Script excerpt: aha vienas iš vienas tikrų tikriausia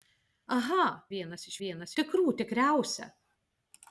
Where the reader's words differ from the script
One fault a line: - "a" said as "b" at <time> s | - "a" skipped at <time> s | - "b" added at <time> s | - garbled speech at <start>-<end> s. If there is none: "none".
none